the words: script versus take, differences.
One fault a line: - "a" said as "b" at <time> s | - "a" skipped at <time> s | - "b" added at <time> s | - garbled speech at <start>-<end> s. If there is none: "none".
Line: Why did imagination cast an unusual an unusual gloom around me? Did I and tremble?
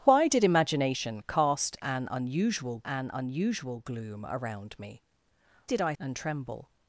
none